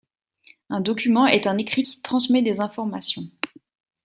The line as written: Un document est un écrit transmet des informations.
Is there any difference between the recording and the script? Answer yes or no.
yes